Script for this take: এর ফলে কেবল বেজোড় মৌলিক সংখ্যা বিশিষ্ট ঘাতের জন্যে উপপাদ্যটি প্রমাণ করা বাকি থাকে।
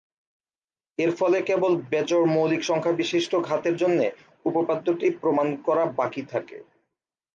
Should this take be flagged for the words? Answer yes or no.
no